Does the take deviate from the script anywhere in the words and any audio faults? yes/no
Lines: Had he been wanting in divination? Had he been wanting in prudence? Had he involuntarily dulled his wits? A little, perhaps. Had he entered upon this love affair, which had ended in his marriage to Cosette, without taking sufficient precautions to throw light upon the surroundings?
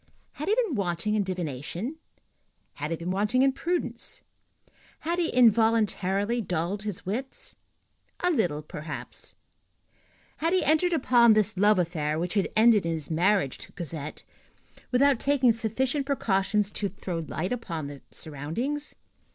no